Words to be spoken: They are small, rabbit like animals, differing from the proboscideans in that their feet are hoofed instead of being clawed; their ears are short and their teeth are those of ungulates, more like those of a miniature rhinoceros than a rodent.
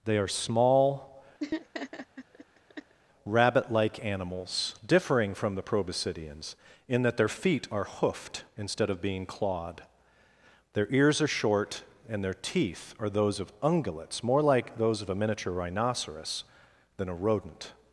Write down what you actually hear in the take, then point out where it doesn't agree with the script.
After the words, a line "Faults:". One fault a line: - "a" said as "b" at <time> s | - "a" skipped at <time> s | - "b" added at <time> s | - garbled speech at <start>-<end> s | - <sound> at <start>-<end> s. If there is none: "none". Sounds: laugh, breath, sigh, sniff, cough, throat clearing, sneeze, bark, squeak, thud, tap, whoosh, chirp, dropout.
They are small, rabbit like animals, differing from the proboscideans in that their feet are hoofed instead of being clawed; their ears are short and their teeth are those of ungulates, more like those of a miniature rhinoceros than a rodent.
Faults:
- laugh at 1.4-2.9 s